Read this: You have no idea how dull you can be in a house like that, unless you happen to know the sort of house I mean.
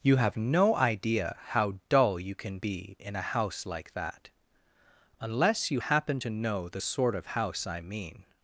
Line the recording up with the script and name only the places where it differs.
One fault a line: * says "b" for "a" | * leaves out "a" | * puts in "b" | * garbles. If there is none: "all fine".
all fine